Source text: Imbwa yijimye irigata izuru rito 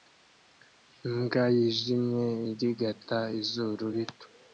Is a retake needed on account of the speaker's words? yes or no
no